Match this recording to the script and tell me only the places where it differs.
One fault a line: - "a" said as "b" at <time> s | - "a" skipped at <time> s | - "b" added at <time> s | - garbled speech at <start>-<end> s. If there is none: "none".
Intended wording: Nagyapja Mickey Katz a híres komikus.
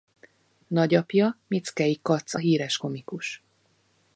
none